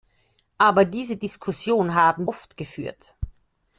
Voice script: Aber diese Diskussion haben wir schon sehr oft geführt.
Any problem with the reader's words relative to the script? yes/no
yes